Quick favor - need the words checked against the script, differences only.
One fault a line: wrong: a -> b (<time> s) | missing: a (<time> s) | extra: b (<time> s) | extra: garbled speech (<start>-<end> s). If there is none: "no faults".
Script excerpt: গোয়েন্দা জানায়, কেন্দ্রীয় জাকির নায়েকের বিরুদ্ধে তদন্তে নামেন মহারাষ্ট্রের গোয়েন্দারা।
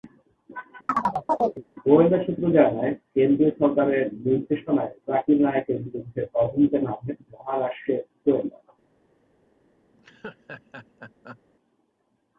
extra: সূত্র (2.2 s)
extra: সরকারের নির্দেশনায় (3.6 s)